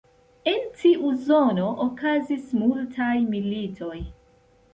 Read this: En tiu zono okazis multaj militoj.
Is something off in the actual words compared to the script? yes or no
no